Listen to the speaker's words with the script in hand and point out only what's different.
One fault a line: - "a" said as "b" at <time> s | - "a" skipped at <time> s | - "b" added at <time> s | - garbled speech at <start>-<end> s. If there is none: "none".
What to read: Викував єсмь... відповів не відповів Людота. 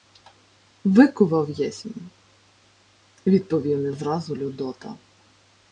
- "відповів" said as "зразу" at 3.9 s